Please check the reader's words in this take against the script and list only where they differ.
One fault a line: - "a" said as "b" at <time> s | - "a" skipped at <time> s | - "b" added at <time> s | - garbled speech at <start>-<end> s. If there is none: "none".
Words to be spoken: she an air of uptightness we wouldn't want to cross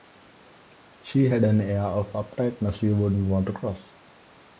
- "had" added at 1.3 s
- "we" said as "you" at 2.8 s